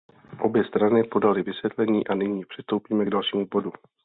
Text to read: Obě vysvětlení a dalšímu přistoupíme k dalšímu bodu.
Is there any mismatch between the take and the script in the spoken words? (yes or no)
yes